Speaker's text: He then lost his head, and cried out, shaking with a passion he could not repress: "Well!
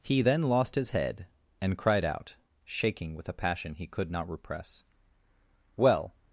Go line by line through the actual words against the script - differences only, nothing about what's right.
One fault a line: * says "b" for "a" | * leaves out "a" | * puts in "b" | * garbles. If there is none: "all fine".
all fine